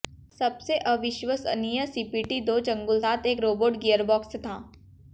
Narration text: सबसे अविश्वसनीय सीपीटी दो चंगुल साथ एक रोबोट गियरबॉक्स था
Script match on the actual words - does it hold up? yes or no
yes